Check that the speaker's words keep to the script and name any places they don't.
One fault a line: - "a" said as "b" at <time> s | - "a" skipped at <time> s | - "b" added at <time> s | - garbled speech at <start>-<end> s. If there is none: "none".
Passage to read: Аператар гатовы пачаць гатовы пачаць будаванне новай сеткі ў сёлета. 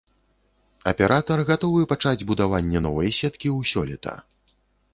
- "гатовы пачаць" skipped at 2.3 s